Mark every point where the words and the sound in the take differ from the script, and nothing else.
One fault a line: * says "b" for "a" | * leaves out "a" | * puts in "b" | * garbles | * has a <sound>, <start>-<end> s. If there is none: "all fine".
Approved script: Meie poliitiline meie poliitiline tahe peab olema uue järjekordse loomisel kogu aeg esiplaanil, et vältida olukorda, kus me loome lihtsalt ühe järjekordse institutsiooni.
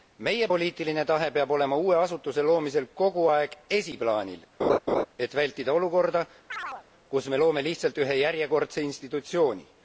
* leaves out "meie poliitiline"
* says "asutuse" for "järjekordse"
* has a laugh, 4.6-5.1 s
* has a chirp, 6.5-6.9 s